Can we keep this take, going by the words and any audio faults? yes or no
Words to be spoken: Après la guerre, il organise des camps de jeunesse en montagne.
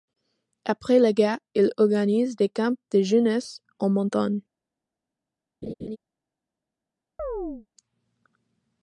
no